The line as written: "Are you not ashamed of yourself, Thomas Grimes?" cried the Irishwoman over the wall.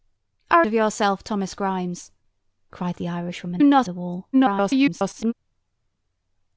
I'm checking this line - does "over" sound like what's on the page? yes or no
no